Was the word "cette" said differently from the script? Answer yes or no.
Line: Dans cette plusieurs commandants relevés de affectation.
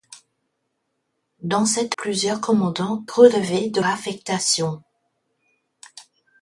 no